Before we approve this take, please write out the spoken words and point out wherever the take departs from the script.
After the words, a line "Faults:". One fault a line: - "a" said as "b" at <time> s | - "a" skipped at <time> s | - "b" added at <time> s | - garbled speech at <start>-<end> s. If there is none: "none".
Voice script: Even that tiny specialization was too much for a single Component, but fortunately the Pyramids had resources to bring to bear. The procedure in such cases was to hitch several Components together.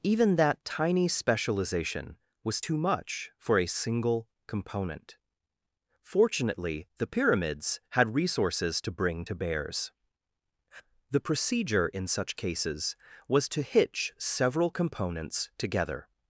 Even that tiny specialization was too much for a single Component, fortunately the Pyramids had resources to bring to bears. The procedure in such cases was to hitch several Components together.
Faults:
- "but" skipped at 5.2 s
- "bear" said as "bears" at 9.3 s